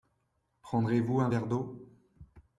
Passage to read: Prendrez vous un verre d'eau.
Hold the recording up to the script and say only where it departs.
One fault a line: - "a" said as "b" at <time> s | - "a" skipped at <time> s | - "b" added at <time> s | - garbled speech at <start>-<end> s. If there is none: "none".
none